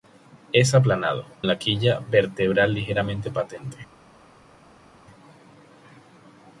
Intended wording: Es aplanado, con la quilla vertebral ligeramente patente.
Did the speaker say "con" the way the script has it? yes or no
no